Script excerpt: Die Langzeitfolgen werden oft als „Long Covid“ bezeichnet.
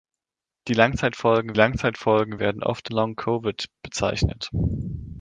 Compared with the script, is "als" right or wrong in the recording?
wrong